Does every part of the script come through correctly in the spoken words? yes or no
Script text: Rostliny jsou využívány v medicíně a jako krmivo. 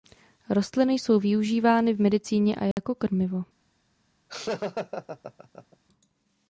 yes